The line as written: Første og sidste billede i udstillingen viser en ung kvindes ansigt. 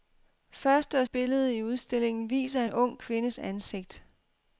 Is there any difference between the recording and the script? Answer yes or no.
yes